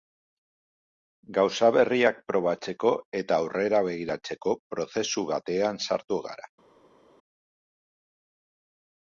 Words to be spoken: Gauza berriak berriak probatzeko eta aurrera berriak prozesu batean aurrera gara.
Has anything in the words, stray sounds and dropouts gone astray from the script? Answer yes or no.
yes